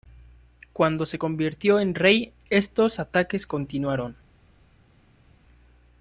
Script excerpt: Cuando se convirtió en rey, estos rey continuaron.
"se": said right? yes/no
yes